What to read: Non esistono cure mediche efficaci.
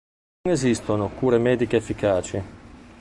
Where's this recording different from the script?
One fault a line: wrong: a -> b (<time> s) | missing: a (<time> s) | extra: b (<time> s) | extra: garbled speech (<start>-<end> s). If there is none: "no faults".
no faults